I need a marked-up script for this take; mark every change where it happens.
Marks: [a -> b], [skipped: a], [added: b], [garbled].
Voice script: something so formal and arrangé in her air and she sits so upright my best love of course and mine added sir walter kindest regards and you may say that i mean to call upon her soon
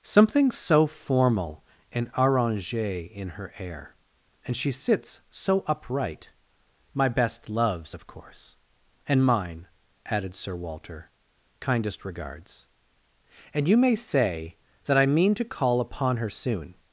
something so formal and arrangé in her air and she sits so upright my best [love -> loves] of course and mine added sir walter kindest regards and you may say that i mean to call upon her soon